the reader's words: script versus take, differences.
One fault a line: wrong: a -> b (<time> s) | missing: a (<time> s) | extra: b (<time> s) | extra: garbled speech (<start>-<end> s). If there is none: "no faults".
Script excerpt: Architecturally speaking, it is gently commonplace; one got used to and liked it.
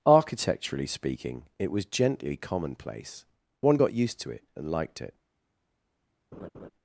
wrong: is -> was (1.7 s)
extra: it (4.3 s)